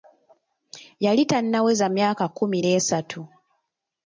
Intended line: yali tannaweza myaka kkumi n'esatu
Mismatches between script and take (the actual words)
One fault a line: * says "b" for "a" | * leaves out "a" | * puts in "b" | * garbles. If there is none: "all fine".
all fine